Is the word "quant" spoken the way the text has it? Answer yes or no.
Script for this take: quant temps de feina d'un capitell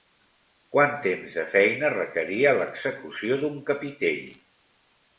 yes